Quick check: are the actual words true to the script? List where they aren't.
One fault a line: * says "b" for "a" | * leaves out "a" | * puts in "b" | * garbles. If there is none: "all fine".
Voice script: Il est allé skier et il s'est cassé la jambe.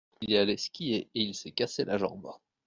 all fine